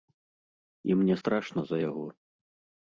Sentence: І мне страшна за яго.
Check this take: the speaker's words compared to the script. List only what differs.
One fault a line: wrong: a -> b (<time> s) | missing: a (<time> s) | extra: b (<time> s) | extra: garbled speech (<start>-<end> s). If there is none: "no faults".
no faults